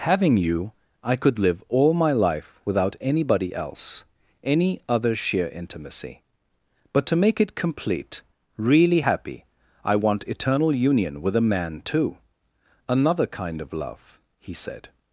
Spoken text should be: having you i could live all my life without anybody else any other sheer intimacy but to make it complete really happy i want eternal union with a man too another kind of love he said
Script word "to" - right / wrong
right